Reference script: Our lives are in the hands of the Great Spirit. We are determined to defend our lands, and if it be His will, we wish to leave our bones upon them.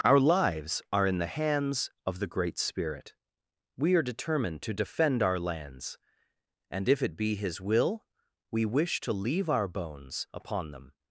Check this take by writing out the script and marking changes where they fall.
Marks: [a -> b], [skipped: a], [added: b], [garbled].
Our lives are in the hands of the Great Spirit. We are determined to defend our lands, and if it be His will, we wish to leave our bones upon them.